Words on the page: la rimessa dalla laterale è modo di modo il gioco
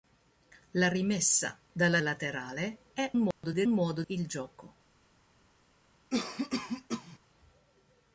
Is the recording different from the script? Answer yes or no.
no